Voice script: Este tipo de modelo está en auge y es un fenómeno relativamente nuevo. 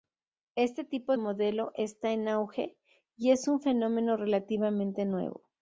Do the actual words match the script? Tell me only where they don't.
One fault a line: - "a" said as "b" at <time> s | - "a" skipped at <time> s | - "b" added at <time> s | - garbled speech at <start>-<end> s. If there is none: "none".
- "de" skipped at 1.1 s